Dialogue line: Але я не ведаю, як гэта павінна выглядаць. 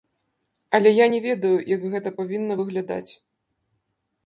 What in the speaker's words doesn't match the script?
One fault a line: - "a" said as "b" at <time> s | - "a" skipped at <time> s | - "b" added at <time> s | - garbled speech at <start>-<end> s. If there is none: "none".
none